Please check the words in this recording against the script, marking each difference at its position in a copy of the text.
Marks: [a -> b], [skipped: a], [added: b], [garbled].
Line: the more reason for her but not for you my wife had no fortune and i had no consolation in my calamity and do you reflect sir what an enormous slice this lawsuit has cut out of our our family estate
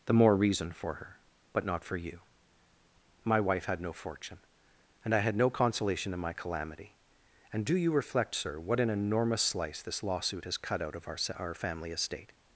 the more reason for her but not for you my wife had no fortune and i had no consolation in my calamity and do you reflect sir what an enormous slice this lawsuit has cut out of our our family estate